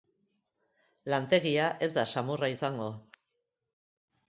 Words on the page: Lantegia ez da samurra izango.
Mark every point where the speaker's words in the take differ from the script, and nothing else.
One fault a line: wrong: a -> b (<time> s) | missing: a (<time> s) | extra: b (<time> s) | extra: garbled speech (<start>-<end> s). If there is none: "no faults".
no faults